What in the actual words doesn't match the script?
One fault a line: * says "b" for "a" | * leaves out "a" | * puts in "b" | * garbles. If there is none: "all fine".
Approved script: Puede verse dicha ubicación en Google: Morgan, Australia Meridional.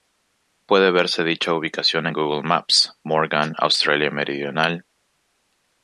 * puts in "maps"